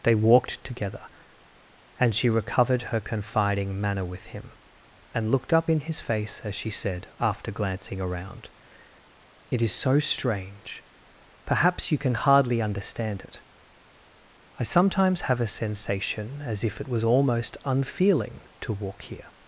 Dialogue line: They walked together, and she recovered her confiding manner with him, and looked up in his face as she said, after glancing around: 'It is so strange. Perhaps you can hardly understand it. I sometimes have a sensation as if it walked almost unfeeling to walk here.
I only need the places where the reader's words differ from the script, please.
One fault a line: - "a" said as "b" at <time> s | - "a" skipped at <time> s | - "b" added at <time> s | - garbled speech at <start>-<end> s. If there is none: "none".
- "walked" said as "was" at 16.9 s